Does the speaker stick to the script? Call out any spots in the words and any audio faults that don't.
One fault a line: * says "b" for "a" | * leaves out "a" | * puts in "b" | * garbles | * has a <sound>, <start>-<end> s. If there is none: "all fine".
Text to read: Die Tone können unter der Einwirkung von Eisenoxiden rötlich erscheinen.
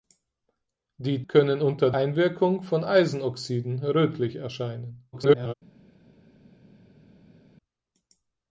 * leaves out "Tone"
* leaves out "der"
* garbles